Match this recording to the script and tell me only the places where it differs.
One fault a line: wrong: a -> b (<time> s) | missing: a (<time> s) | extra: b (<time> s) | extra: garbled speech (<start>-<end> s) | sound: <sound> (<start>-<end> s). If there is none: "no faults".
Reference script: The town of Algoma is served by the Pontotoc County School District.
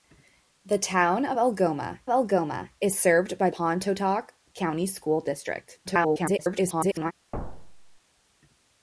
extra: Algoma (2.1 s)
missing: the (3.5 s)
extra: garbled speech (5.8-7.1 s)
sound: thud (7.3-8.0 s)